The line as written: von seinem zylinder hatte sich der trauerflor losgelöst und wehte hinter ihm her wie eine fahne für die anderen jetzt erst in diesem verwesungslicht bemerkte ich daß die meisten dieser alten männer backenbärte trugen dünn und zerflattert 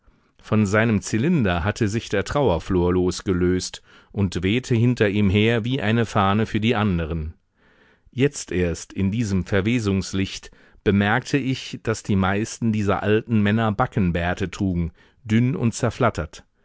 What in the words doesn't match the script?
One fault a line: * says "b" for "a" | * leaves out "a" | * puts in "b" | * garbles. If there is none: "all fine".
all fine